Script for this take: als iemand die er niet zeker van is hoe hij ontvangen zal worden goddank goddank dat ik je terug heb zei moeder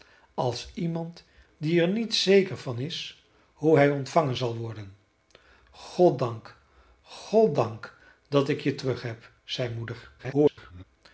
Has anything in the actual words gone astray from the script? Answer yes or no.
yes